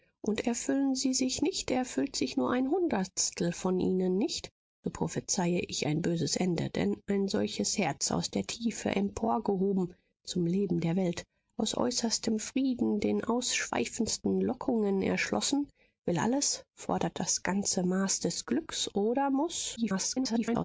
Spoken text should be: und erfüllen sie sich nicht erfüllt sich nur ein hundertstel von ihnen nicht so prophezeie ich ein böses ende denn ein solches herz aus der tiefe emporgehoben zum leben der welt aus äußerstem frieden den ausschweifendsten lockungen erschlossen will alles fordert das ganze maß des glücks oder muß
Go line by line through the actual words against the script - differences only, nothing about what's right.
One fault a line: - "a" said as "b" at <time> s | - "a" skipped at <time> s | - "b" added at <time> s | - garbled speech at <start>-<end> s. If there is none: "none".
- garbled speech at 19.8-20.6 s